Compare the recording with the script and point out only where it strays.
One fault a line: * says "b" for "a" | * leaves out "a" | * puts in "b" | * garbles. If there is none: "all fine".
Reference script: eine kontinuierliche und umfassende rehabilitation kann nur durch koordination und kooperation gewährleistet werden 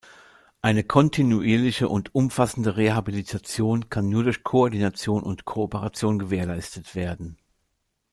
all fine